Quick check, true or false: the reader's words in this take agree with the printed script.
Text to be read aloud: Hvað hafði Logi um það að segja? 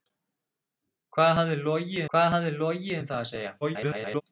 false